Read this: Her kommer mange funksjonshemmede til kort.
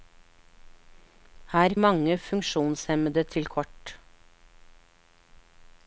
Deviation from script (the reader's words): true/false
true